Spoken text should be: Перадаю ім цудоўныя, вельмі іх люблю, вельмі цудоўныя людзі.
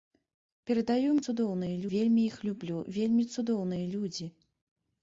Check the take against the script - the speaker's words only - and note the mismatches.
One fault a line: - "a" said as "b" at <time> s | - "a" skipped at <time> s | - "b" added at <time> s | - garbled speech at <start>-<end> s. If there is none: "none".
none